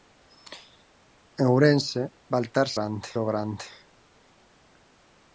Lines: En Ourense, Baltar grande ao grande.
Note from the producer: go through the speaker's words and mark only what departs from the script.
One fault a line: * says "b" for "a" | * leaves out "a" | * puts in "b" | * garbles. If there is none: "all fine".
all fine